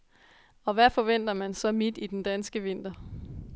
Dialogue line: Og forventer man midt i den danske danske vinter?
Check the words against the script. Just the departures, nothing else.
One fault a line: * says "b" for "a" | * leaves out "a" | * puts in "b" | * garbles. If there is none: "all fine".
* puts in "hvad"
* puts in "så"
* leaves out "danske"